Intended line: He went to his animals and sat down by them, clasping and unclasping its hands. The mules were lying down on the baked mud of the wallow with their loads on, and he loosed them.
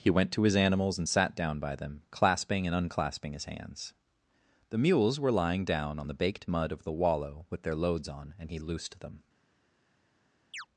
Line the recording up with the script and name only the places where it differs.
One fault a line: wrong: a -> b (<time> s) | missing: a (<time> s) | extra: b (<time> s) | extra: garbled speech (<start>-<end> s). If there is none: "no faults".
wrong: its -> his (3.3 s)